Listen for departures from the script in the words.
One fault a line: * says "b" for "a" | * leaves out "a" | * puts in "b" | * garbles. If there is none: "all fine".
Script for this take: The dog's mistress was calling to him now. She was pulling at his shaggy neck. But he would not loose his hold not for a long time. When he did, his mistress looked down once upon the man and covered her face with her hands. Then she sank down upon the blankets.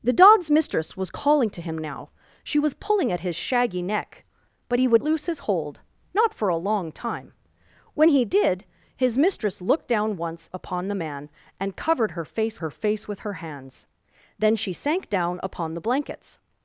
* leaves out "not"
* puts in "her face"